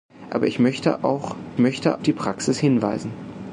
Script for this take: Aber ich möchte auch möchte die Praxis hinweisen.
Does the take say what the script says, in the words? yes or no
yes